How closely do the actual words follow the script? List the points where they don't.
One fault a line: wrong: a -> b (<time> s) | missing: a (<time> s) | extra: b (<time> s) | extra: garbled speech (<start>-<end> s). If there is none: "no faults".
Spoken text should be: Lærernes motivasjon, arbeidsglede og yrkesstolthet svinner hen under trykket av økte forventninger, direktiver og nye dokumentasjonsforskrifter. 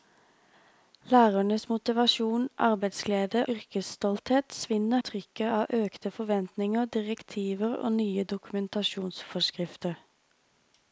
missing: og (3.5 s)
missing: hen under (5.0 s)